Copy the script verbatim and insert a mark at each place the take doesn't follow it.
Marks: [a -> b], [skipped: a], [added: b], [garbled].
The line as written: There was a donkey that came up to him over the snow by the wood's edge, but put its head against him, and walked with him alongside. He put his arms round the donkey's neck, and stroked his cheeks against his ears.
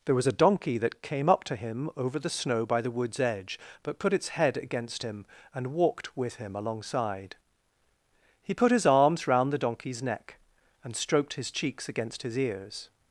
There was a donkey that came up to him over the snow by the wood's edge, but put its head against him, and walked with him alongside. He put his arms round the donkey's neck, and stroked his cheeks against his ears.